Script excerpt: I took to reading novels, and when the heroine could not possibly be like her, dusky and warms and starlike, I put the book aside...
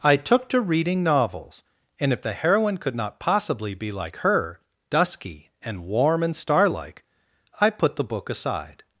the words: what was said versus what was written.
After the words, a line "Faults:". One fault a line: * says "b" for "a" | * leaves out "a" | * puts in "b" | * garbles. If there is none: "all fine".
I took to reading novels, and if the heroine could not possibly be like her, dusky and warm and starlike, I put the book aside...
Faults:
* says "if" for "when"
* says "warm" for "warms"